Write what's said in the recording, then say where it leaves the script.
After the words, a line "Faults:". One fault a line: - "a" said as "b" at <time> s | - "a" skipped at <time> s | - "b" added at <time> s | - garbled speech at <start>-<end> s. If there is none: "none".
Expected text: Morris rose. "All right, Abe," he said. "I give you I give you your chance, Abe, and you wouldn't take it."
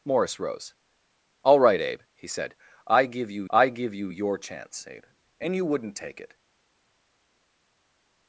Morris rose. "All right, Abe," he said. "I give you I give you your chance, Abe, and you wouldn't take it."
Faults:
none